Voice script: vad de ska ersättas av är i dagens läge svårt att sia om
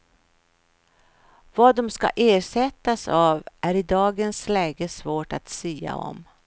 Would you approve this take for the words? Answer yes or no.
yes